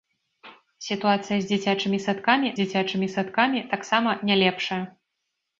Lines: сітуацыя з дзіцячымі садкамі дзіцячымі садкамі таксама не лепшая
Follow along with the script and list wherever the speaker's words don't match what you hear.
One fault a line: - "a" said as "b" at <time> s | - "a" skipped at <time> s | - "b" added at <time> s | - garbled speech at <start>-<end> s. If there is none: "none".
none